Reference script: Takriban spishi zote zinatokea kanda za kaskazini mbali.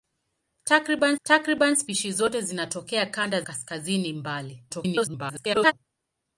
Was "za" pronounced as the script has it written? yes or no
no